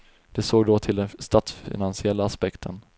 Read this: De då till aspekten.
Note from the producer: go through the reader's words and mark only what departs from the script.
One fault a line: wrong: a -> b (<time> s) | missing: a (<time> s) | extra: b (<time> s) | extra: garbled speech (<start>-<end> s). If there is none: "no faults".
extra: såg (0.4 s)
extra: den statsfinansiella (0.9 s)